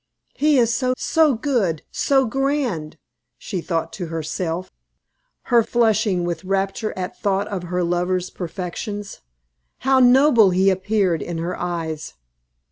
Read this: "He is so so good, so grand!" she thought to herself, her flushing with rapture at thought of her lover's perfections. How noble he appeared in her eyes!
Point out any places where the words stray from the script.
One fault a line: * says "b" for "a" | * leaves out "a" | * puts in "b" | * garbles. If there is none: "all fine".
all fine